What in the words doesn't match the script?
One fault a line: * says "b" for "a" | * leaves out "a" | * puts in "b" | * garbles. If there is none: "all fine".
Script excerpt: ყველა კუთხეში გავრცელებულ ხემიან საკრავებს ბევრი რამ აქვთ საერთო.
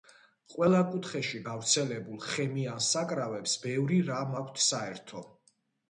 all fine